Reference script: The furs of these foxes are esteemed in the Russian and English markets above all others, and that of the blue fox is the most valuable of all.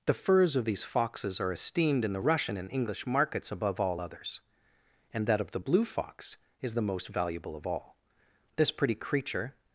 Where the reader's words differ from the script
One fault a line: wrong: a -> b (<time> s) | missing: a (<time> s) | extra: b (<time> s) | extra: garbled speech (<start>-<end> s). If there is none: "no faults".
extra: This pretty creature (8.6 s)